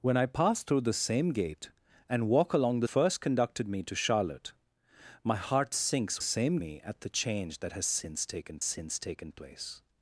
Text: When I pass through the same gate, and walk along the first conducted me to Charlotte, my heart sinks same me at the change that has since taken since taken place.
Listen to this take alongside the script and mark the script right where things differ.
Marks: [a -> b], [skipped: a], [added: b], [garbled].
When I pass through the same gate, and walk along the first conducted me to Charlotte, my heart sinks same me at the change that has since taken since taken place.